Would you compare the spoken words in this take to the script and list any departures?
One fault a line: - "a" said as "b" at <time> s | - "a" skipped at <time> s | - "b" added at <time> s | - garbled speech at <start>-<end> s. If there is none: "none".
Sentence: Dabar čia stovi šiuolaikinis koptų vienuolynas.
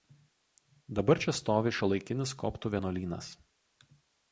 none